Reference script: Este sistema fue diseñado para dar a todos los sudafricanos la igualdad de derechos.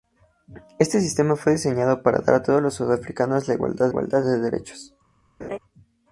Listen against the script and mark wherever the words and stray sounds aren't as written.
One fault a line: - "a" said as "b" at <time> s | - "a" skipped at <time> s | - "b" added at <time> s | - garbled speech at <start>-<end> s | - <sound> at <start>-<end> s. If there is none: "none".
- "igualdad" added at 3.9 s
- laugh at 5.4-5.6 s